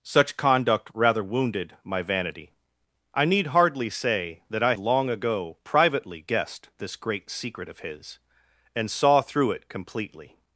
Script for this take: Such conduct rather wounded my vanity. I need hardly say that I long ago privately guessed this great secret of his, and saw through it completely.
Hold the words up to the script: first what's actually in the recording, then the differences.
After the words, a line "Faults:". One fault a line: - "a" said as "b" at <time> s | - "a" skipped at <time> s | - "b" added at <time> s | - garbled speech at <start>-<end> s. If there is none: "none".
Such conduct rather wounded my vanity. I need hardly say that I long ago privately guessed this great secret of his, and saw through it completely.
Faults:
none